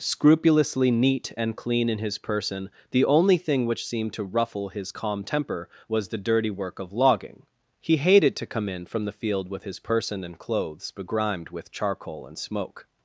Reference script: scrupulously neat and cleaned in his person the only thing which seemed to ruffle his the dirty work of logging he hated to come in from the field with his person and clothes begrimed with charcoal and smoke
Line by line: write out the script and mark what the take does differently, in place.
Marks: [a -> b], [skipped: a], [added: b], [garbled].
scrupulously neat and [cleaned -> clean] in his person the only thing which seemed to ruffle his [added: calm temper was] the dirty work of logging he hated to come in from the field with his person and clothes begrimed with charcoal and smoke